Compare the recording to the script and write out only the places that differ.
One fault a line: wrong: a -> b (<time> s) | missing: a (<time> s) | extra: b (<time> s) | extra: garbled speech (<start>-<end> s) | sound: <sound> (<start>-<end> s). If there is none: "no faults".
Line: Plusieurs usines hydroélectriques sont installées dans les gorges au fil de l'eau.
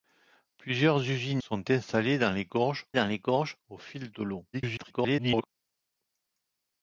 missing: hydroélectriques (1.4 s)
extra: dans les gorges (2.9 s)
extra: garbled speech (4.5-5.5 s)